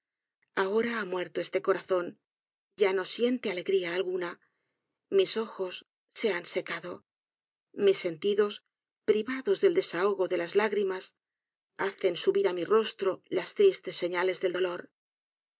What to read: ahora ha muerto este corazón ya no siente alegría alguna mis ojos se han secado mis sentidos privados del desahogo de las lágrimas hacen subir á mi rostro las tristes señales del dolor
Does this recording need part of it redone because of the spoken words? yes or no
no